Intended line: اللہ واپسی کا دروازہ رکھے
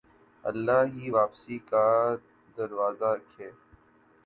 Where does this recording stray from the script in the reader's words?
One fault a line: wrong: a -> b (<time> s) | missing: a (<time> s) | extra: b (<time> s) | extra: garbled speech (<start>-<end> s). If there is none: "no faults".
extra: ہی (0.9 s)